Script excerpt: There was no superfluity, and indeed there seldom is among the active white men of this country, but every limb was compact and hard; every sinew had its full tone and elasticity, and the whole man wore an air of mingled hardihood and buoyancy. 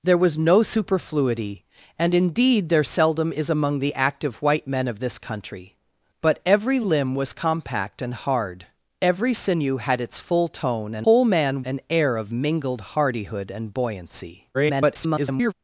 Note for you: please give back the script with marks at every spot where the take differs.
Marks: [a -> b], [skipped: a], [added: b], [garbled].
There was no superfluity, and indeed there seldom is among the active white men of this country, but every limb was compact and hard; every sinew had its full tone and [skipped: elasticity, and the] whole man [skipped: wore] an air of mingled hardihood and buoyancy. [garbled]